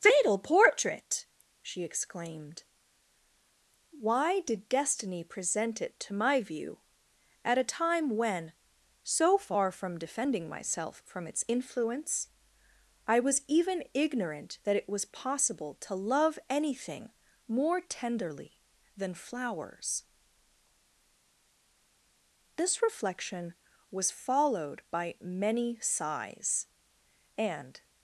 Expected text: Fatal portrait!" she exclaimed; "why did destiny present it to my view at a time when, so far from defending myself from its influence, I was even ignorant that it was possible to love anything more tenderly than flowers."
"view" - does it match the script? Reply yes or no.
yes